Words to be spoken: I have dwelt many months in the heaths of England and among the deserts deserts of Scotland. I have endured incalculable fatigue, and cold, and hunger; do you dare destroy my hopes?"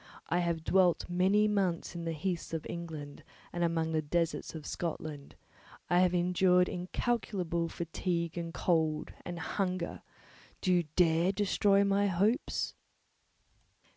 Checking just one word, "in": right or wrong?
right